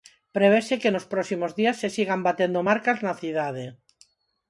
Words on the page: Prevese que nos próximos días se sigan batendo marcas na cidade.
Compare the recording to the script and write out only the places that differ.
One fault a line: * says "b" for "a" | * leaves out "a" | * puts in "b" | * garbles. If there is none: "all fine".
all fine